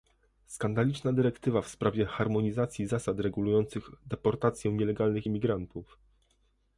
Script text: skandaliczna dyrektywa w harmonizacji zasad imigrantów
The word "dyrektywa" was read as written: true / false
true